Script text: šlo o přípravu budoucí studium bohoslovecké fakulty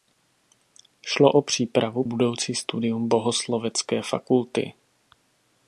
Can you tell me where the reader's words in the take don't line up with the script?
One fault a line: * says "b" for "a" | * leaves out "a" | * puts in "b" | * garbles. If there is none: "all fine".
all fine